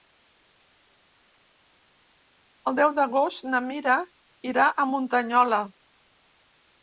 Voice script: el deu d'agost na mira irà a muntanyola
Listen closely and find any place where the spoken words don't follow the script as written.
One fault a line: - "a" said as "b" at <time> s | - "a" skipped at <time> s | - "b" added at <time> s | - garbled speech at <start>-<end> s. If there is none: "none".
none